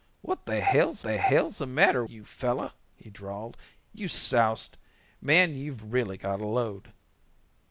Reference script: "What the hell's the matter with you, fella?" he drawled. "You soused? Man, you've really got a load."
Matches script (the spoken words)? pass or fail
fail